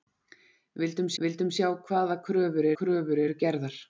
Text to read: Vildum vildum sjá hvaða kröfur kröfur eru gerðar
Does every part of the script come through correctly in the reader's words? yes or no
yes